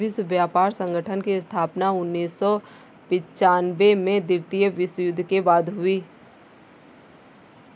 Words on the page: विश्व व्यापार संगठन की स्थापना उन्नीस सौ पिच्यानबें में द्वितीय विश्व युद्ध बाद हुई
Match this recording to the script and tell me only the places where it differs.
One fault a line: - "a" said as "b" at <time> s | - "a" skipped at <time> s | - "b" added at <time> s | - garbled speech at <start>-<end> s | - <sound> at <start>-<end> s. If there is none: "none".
- "के" added at 5.2 s